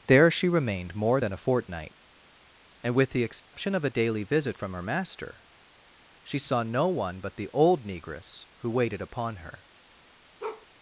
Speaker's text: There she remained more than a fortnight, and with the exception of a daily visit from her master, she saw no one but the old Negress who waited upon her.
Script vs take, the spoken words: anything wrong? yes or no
no